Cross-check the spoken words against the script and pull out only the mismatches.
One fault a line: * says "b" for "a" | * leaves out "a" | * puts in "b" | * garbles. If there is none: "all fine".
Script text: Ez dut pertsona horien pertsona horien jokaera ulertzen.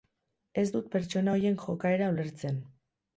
* leaves out "pertsona horien"